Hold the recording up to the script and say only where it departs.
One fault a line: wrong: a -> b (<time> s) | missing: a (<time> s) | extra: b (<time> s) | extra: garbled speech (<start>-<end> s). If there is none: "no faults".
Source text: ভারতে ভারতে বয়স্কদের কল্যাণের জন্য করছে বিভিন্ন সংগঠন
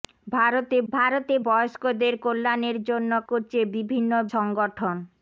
no faults